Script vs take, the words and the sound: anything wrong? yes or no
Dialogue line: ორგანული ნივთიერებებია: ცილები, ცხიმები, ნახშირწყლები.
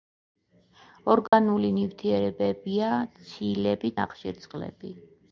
yes